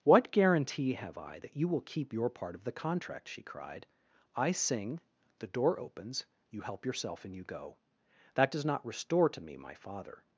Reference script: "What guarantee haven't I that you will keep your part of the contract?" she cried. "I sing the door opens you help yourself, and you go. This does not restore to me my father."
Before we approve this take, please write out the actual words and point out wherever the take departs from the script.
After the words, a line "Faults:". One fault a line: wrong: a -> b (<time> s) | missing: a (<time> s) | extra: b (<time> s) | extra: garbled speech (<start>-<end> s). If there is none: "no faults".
"What guarantee have I that you will keep your part of the contract?" she cried. "I sing the door opens you help yourself, and you go. That does not restore to me my father."
Faults:
wrong: haven't -> have (0.9 s)
wrong: This -> That (8.3 s)